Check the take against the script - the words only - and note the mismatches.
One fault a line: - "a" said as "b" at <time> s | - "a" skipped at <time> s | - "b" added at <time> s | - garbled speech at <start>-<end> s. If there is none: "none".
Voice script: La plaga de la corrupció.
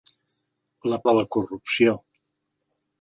- "plaga" skipped at 1.0 s